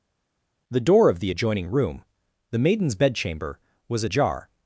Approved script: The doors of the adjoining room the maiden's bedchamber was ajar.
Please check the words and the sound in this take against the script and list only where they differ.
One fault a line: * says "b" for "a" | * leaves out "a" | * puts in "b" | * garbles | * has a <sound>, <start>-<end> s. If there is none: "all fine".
* says "door" for "doors"